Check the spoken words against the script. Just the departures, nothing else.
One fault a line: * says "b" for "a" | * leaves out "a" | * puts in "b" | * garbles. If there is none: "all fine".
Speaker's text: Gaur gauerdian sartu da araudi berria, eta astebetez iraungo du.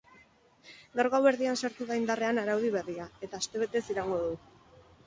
* puts in "indarrean"